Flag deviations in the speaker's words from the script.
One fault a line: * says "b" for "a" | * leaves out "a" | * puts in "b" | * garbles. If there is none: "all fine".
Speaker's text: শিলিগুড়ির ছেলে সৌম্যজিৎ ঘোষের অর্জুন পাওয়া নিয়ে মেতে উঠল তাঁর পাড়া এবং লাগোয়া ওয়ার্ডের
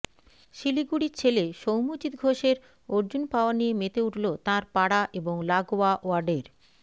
all fine